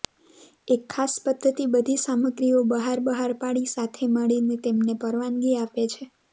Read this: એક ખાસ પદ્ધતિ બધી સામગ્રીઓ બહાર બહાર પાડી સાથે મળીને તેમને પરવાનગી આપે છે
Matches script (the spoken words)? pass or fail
pass